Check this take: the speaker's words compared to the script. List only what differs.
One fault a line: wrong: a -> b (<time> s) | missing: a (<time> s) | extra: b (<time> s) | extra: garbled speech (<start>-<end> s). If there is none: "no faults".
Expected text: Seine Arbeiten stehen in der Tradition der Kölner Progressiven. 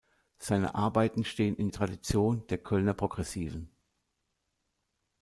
missing: der (1.7 s)